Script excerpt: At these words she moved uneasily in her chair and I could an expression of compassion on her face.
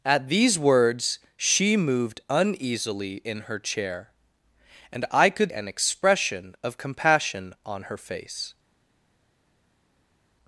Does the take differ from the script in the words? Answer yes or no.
no